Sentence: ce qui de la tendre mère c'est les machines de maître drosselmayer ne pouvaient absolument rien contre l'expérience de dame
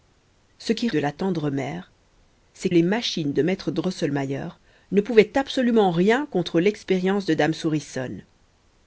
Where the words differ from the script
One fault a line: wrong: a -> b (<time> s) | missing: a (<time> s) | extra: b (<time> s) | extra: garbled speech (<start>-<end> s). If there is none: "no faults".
no faults